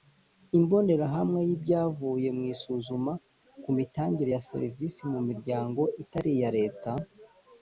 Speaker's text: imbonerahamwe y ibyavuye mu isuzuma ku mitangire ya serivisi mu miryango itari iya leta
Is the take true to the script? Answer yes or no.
yes